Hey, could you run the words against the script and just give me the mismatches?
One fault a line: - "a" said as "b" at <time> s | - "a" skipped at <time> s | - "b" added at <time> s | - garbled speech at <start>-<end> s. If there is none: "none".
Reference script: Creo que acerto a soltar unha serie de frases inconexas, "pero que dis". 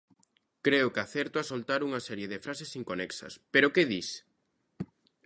none